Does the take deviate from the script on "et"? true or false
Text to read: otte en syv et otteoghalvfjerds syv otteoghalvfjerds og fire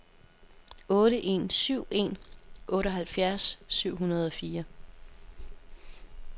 true